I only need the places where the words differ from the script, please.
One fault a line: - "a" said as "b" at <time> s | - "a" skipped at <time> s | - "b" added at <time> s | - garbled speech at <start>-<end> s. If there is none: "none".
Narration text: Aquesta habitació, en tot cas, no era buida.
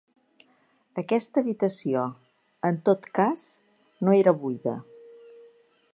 none